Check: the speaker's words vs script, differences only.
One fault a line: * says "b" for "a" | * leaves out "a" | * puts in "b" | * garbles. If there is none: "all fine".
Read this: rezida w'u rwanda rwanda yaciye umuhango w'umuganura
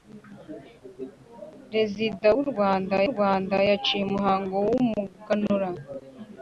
all fine